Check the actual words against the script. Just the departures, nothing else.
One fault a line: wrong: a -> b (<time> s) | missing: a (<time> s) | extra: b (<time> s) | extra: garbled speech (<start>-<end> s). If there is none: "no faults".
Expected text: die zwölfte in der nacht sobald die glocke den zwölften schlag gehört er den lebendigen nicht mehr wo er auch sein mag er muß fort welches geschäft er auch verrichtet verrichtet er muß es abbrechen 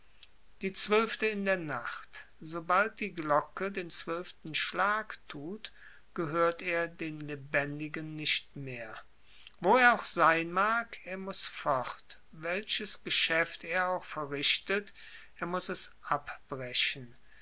extra: tut (5.3 s)
missing: verrichtet (14.9 s)